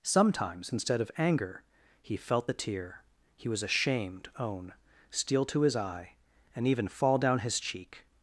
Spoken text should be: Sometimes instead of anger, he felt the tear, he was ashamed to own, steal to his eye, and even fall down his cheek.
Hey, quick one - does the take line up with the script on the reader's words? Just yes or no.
no